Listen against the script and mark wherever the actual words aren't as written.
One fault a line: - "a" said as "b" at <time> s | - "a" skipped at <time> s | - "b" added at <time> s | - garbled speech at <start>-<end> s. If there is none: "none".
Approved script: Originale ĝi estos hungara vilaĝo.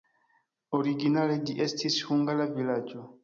- "estos" said as "estis" at 1.7 s